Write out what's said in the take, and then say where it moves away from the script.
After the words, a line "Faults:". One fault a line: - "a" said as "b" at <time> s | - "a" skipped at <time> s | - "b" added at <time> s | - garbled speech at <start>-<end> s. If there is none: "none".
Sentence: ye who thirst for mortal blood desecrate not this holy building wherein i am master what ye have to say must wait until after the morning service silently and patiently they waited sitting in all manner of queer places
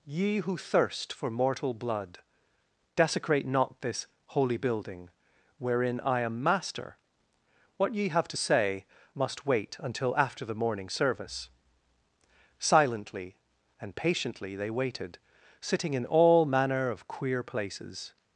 ye who thirst for mortal blood desecrate not this holy building wherein i am master what ye have to say must wait until after the morning service silently and patiently they waited sitting in all manner of queer places
Faults:
none